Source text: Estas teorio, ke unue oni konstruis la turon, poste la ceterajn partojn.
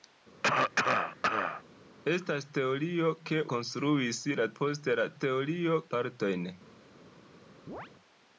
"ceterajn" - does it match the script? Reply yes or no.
no